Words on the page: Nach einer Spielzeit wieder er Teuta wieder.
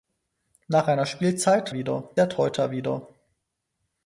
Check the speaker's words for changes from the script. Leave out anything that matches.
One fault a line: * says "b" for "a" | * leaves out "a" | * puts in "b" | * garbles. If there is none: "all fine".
all fine